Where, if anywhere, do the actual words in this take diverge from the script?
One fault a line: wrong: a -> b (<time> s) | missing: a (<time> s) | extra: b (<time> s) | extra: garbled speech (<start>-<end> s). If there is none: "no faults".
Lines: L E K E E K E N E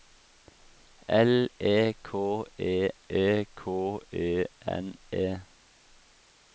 no faults